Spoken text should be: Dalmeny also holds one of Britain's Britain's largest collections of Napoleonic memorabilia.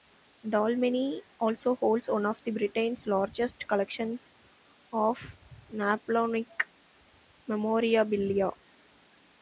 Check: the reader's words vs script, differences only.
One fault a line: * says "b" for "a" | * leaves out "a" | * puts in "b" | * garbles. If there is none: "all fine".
* leaves out "Britain's"